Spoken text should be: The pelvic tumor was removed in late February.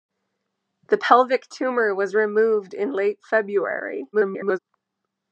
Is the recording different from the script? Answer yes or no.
yes